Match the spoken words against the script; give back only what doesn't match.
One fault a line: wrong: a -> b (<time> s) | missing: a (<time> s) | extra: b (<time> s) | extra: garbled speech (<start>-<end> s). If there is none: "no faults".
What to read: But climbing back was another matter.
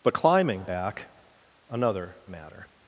missing: was (1.1 s)